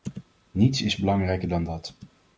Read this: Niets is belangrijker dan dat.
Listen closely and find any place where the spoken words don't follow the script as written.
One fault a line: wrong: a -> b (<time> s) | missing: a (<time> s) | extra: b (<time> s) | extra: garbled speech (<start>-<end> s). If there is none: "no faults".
no faults